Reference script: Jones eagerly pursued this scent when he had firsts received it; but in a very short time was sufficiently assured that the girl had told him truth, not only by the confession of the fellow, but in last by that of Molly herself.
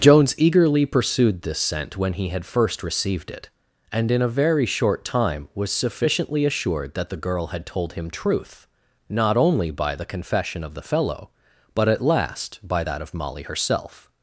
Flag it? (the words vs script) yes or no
yes